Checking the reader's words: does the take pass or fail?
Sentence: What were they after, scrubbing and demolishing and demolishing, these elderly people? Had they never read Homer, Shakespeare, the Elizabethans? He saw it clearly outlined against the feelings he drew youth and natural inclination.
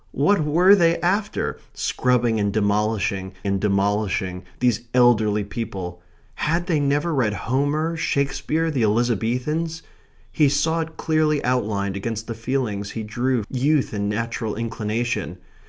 pass